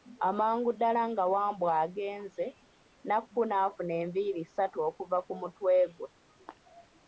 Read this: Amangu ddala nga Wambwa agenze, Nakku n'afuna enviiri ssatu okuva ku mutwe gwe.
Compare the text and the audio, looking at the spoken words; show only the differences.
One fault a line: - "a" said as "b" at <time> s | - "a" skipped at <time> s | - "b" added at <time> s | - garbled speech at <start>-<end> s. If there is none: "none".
none